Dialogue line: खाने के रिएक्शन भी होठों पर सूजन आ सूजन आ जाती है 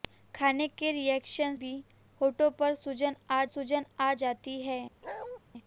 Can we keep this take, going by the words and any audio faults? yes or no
no